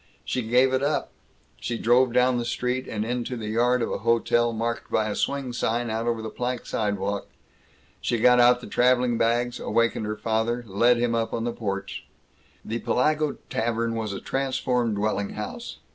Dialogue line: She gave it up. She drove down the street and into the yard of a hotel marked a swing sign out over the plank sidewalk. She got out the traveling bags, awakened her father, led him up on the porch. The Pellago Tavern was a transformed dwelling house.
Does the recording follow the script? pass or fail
fail